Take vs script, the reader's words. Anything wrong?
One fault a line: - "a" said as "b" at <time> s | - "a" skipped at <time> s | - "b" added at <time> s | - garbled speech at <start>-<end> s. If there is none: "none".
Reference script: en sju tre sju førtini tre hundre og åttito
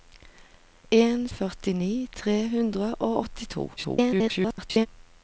- "sju tre sju" skipped at 1.2 s
- garbled speech at 3.8-4.9 s